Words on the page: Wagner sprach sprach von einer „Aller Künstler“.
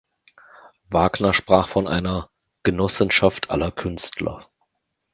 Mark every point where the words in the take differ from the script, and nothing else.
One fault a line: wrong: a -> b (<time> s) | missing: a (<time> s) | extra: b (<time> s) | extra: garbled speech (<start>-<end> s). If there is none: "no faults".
missing: sprach (1.7 s)
extra: Genossenschaft (2.6 s)